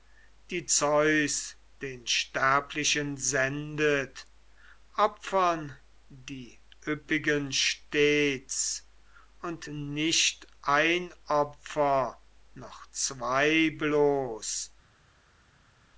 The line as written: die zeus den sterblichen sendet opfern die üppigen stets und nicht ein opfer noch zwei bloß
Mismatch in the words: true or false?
false